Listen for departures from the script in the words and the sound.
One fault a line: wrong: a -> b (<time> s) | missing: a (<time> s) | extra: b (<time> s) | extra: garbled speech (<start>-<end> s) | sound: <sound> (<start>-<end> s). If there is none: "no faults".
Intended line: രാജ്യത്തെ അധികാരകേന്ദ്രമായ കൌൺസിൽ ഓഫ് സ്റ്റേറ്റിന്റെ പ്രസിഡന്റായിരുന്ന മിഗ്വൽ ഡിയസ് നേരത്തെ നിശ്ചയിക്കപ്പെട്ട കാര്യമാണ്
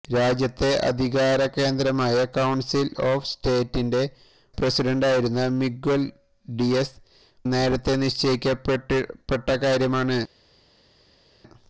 no faults